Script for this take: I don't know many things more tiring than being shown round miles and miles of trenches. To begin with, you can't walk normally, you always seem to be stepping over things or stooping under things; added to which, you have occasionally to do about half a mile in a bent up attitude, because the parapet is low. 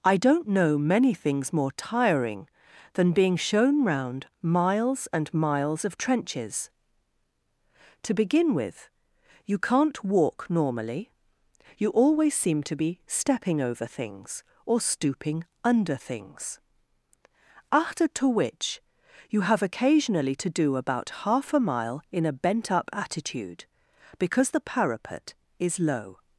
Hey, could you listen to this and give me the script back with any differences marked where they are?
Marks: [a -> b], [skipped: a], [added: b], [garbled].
I don't know many things more tiring than being shown round miles and miles of trenches. To begin with, you can't walk normally, you always seem to be stepping over things or stooping under things; [added -> after] to which, you have occasionally to do about half a mile in a bent up attitude, because the parapet is low.